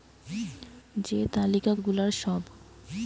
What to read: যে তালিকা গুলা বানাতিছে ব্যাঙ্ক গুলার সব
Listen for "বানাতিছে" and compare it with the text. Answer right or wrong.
wrong